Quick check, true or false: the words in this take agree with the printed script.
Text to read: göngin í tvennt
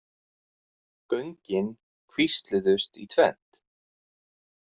false